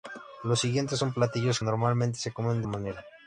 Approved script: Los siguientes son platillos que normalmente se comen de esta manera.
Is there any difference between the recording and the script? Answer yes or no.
yes